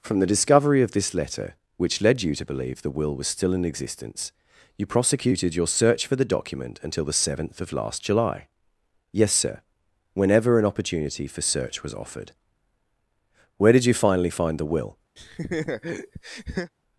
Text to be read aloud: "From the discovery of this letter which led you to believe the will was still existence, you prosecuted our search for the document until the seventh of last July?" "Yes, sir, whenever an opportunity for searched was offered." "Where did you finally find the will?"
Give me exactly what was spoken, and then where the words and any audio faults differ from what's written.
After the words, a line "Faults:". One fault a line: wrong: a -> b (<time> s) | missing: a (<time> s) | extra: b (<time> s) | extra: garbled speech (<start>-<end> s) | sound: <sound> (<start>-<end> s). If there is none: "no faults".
"From the discovery of this letter which led you to believe the will was still in existence, you prosecuted your search for the document until the seventh of last July?" "Yes, sir, whenever an opportunity for search was offered." "Where did you finally find the will?"
Faults:
extra: in (3.5 s)
wrong: our -> your (5.5 s)
wrong: searched -> search (11.4 s)
sound: laugh (15.2-16.7 s)